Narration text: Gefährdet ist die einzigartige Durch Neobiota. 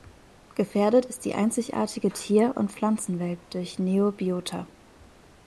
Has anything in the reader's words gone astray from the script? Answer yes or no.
yes